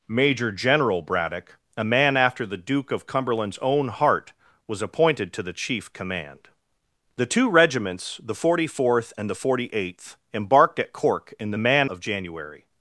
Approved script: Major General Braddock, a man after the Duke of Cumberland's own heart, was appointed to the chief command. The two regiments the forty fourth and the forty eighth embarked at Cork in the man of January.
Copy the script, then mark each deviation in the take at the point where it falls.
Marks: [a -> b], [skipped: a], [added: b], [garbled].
Major General Braddock, a man after the Duke of Cumberland's own heart, was appointed to the chief command. The two regiments the forty fourth and the forty eighth embarked at Cork in the man of January.